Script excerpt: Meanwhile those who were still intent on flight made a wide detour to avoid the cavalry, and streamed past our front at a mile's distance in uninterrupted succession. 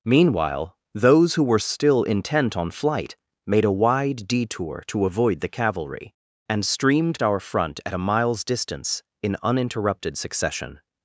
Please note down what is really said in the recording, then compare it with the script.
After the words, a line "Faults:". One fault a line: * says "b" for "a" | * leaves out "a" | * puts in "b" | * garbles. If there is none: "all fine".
Meanwhile those who were still intent on flight made a wide detour to avoid the cavalry, and streamed our front at a mile's distance in uninterrupted succession.
Faults:
* leaves out "past"